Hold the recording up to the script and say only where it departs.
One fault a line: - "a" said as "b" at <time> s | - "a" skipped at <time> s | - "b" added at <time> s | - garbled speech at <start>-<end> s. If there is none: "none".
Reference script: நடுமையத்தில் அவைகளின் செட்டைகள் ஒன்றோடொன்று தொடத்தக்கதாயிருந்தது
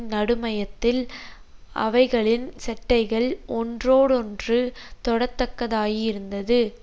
none